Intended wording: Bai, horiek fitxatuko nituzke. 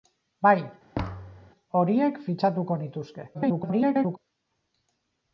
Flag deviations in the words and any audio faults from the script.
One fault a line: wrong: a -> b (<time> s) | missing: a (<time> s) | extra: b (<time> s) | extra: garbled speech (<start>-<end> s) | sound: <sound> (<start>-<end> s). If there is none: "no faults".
sound: thud (0.9-1.5 s)
extra: garbled speech (3.3-4.2 s)